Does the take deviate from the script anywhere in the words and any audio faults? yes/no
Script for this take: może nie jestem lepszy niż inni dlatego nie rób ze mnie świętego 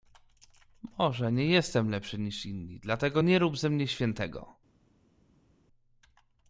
no